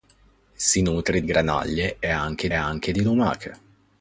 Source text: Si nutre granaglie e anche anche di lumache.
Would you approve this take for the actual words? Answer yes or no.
yes